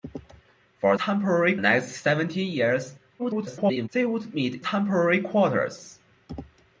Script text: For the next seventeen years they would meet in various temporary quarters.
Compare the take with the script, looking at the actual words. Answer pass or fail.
fail